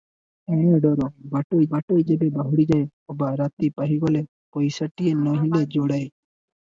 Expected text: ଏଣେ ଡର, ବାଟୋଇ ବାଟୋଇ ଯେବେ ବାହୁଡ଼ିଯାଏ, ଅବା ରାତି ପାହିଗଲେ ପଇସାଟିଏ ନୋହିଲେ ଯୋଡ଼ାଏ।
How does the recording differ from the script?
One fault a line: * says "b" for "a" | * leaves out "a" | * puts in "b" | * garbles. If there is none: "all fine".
all fine